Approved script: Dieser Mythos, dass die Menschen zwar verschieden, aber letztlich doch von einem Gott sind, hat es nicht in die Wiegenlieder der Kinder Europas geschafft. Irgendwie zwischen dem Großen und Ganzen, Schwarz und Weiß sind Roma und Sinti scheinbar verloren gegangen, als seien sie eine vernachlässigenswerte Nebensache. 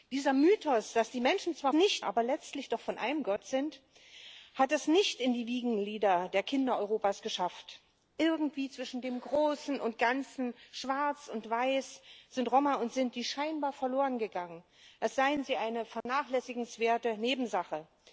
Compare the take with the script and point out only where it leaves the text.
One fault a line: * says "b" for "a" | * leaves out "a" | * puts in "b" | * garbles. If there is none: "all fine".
* says "nicht" for "verschieden"